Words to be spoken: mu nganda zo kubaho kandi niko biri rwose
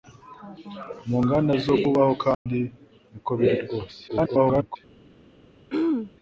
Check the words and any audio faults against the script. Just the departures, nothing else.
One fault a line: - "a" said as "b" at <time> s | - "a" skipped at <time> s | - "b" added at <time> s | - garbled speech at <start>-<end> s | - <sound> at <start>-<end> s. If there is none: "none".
- dropout at 2.3-2.5 s
- garbled speech at 4.1-4.8 s
- throat clearing at 5.7-6.1 s